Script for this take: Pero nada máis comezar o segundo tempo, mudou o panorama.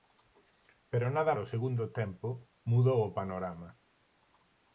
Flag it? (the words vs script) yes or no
yes